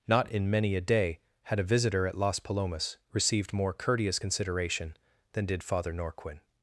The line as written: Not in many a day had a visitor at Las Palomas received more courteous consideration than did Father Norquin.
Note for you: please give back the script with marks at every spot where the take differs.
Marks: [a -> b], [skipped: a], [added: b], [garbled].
Not in many a day had a visitor at Las Palomas received more courteous consideration than did Father Norquin.